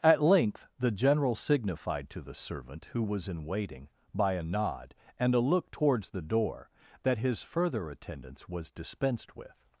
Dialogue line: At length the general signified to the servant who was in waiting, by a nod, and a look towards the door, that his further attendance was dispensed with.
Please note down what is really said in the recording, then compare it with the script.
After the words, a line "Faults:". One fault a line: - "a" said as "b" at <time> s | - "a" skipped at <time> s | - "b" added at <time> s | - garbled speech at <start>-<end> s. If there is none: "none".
At length the general signified to the servant who was in waiting, by a nod, and a look towards the door, that his further attendance was dispensed with.
Faults:
none